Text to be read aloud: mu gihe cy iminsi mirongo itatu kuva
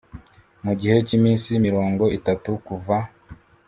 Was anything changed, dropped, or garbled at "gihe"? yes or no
no